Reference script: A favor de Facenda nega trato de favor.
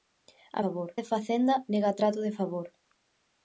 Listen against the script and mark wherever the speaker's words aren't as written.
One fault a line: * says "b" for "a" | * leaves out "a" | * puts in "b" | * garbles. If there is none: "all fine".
all fine